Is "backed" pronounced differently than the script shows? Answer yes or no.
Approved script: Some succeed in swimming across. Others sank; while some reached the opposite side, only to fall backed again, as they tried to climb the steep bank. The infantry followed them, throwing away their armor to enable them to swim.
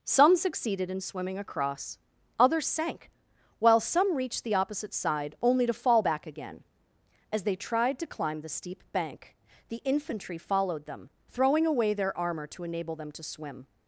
yes